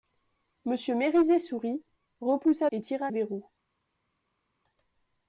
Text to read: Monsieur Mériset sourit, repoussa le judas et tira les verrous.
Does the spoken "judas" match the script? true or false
false